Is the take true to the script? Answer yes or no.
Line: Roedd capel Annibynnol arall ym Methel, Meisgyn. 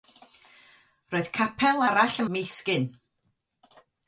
no